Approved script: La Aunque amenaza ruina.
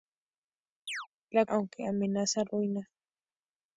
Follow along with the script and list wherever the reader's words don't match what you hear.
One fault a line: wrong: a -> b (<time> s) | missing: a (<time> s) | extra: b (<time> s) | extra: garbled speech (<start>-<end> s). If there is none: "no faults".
no faults